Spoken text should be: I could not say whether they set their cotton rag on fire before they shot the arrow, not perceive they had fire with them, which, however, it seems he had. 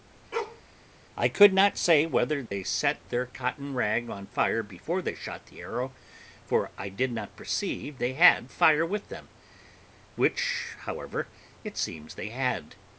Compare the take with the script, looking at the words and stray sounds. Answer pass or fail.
fail